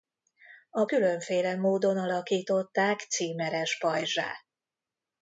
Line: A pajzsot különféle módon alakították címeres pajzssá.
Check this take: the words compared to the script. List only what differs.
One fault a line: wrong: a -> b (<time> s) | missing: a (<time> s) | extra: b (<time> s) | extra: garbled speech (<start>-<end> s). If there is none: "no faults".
missing: pajzsot (0.8 s)